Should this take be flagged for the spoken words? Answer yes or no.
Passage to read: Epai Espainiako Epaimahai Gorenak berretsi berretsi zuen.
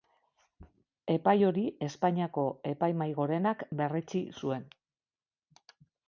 yes